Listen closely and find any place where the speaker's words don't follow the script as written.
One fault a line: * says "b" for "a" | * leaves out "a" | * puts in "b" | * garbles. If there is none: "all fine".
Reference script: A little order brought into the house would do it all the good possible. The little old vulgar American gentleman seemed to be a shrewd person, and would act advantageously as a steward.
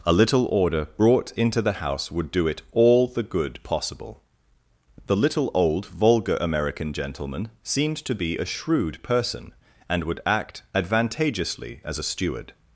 all fine